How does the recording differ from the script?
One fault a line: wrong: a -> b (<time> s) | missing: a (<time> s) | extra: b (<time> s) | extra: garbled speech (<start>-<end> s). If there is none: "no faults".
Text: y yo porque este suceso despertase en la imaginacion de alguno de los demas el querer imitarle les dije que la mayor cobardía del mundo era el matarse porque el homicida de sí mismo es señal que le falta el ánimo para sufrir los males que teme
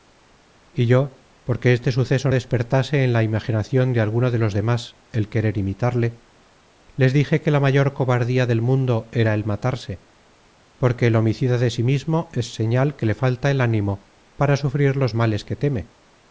no faults